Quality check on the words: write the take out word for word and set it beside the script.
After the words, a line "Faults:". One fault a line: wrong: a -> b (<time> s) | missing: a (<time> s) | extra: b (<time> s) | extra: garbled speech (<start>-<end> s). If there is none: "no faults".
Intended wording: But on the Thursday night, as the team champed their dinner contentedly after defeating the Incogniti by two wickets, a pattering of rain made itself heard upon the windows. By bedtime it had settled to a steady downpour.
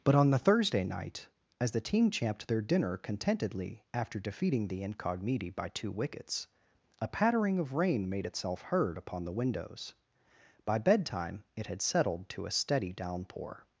But on the Thursday night, as the team champed their dinner contentedly after defeating the Incogniti by two wickets, a pattering of rain made itself heard upon the windows. By bedtime it had settled to a steady downpour.
Faults:
no faults